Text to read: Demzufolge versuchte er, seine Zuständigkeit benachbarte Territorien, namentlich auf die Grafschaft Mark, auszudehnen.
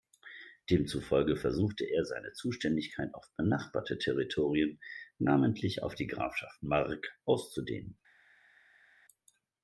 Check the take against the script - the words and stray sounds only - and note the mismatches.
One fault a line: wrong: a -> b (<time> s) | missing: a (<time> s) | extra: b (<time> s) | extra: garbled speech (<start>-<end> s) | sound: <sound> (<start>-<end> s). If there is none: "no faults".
extra: auf (3.1 s)